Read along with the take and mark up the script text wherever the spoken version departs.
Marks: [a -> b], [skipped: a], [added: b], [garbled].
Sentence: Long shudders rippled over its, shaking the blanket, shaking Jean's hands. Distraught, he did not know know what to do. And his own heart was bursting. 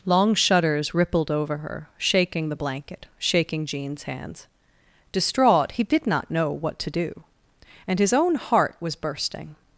Long shudders rippled over [its, -> her] shaking the blanket, shaking Jean's hands. Distraught, he did not know [skipped: know] what to do. And his own heart was bursting.